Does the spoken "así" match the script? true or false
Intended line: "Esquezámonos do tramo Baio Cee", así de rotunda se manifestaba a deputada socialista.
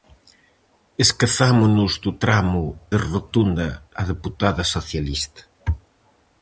false